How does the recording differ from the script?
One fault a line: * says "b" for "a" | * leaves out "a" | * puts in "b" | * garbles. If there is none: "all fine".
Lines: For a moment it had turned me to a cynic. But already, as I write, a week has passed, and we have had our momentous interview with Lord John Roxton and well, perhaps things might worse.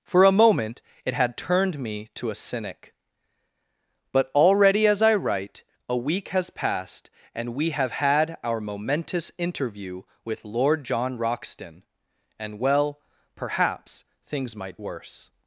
all fine